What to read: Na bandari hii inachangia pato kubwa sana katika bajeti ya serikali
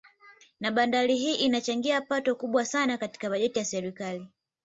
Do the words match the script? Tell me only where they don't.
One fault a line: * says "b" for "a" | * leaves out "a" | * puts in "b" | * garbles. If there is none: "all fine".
all fine